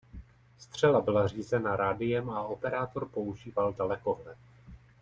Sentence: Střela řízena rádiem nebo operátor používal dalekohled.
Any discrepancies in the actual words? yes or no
yes